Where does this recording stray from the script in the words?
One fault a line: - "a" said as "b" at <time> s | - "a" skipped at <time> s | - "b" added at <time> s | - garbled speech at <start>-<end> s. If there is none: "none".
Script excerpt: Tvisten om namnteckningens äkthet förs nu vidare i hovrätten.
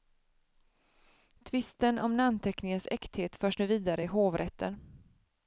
none